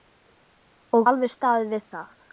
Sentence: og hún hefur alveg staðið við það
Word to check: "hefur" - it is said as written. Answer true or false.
false